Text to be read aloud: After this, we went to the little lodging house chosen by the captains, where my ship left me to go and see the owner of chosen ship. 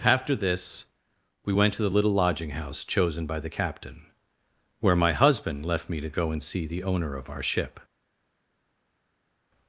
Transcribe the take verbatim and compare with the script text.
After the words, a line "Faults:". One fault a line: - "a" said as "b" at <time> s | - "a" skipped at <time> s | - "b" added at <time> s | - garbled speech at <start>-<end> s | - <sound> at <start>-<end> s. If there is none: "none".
After this, we went to the little lodging house chosen by the captain, where my husband left me to go and see the owner of our ship.
Faults:
- "captains" said as "captain" at 3.5 s
- "ship" said as "husband" at 5.1 s
- "chosen" said as "our" at 7.3 s